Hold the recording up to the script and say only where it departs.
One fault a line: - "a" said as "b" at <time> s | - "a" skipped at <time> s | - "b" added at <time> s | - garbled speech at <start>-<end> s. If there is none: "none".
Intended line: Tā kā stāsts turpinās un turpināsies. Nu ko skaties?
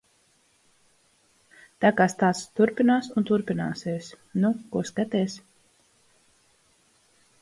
none